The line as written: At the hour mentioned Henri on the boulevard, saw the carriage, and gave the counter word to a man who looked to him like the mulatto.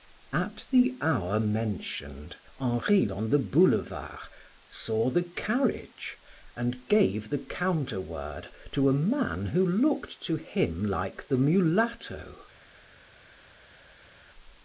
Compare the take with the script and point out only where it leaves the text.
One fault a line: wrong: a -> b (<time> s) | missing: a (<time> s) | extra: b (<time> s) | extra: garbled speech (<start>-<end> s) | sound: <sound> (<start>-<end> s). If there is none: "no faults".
no faults